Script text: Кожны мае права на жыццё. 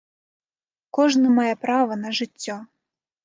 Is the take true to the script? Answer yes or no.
yes